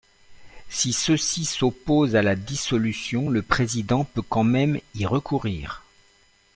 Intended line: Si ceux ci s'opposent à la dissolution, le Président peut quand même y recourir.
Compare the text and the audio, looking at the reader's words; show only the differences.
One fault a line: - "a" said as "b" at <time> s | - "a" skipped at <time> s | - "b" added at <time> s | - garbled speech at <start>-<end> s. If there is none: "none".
none